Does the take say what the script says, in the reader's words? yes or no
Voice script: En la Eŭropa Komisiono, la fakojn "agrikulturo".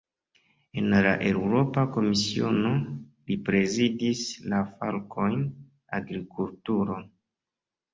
no